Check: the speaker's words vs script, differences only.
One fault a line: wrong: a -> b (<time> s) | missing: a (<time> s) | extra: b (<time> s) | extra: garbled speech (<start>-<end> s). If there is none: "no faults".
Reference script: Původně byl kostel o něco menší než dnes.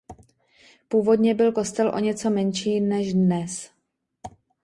no faults